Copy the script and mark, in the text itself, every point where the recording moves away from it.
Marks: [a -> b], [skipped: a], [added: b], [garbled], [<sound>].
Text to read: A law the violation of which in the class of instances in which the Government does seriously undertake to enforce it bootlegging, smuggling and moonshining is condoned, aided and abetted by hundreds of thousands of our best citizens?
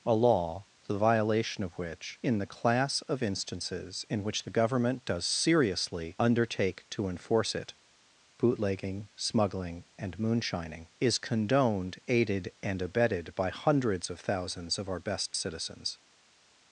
A law the violation of which in the class of instances in which the Government does seriously undertake to enforce it bootlegging, smuggling and moonshining is condoned, aided and abetted by hundreds of thousands of our best citizens?